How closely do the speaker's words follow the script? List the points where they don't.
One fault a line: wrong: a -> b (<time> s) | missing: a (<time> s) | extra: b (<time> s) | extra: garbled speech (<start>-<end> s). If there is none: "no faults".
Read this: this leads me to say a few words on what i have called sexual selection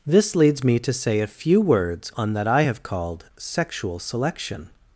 wrong: what -> that (2.3 s)